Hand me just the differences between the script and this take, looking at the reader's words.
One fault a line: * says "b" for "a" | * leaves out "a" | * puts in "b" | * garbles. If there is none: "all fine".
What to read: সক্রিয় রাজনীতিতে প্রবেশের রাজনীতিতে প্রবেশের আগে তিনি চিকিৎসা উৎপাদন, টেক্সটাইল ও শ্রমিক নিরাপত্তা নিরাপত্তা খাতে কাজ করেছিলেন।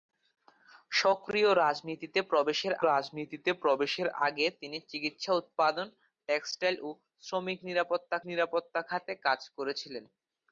all fine